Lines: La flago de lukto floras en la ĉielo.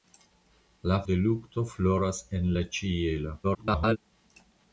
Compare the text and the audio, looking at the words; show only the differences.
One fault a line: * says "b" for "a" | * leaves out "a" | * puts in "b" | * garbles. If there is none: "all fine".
* leaves out "flago"
* garbles